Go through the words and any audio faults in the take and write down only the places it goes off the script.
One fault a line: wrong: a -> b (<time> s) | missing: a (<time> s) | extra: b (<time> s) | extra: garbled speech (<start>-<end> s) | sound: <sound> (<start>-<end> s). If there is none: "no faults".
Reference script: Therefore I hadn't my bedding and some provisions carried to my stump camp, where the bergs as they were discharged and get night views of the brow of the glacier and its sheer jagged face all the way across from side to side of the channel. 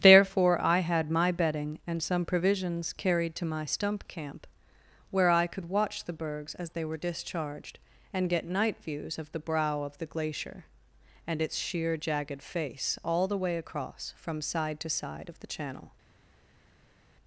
wrong: hadn't -> had (0.8 s)
extra: I could watch (5.3 s)